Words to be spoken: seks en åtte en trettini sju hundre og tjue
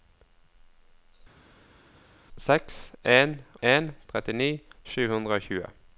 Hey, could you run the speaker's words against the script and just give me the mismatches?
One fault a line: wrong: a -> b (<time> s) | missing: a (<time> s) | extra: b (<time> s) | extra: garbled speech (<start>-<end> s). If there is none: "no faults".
missing: åtte (3.4 s)